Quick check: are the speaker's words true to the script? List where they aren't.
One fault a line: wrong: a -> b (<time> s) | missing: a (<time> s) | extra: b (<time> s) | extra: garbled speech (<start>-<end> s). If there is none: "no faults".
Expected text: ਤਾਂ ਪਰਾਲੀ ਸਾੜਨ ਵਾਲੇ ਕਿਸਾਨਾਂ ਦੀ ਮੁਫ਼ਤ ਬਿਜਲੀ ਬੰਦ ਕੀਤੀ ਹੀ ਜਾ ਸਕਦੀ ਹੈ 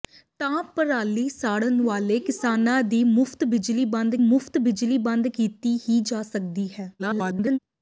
extra: ਮੁਫ਼ਤ ਬਿਜਲੀ ਬੰਦ (4.2 s)
extra: garbled speech (7.0-7.6 s)